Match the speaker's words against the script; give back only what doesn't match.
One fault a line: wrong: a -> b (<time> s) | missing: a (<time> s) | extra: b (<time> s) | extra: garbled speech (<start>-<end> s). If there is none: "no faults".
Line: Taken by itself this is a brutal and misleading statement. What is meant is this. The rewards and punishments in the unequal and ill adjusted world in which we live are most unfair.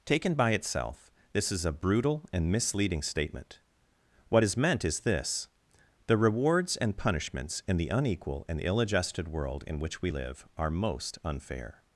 no faults